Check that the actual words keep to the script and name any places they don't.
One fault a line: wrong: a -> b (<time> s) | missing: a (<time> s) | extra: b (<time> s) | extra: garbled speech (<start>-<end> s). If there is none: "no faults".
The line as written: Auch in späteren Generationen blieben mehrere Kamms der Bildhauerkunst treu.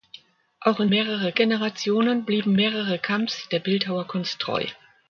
wrong: späteren -> mehrere (0.9 s)